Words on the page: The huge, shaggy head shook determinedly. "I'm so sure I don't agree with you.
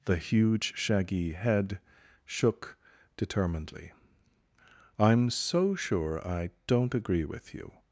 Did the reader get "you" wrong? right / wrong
right